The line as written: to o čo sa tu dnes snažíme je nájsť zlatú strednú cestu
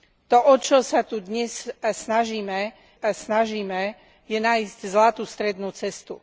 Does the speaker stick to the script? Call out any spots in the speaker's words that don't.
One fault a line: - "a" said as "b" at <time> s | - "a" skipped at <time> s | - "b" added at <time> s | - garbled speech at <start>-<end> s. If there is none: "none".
- "snažíme" added at 3.0 s